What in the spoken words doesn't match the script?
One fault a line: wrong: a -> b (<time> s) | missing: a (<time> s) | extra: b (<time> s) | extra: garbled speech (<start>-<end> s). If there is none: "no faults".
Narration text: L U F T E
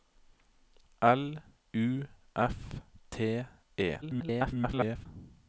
extra: garbled speech (4.0-5.1 s)